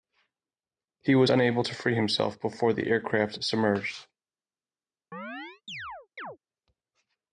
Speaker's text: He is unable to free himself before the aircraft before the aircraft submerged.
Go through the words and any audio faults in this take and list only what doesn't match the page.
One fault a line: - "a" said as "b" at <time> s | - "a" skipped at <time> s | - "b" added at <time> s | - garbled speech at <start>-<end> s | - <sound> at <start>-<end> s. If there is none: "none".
- "is" said as "was" at 1.1 s
- "before the aircraft" skipped at 3.4 s
- chirp at 5.1-6.4 s